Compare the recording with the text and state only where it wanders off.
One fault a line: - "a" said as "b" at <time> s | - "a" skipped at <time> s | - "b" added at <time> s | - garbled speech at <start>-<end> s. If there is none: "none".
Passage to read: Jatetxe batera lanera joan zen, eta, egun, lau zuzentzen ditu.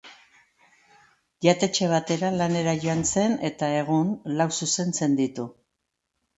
none